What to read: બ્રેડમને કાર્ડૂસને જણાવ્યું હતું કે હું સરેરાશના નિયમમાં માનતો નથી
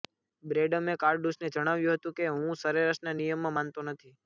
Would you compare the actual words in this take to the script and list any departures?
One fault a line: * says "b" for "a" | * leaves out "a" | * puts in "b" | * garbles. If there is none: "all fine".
all fine